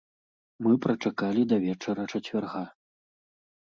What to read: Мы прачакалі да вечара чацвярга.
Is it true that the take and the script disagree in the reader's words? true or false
false